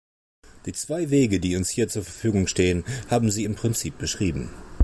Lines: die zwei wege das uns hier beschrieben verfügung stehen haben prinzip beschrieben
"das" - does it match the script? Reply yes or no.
no